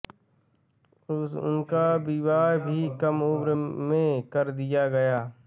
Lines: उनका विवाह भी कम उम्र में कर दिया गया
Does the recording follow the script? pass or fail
pass